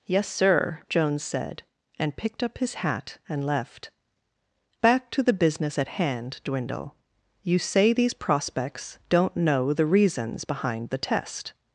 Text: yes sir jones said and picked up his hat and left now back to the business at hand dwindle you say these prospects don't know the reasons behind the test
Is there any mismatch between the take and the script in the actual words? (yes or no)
yes